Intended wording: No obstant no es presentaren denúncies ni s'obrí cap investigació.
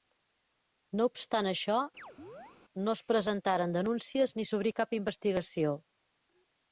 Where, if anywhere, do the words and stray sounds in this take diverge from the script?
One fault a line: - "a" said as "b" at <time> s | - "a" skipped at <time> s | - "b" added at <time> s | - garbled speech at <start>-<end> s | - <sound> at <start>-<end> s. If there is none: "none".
- "això" added at 1.5 s
- chirp at 2.0-2.6 s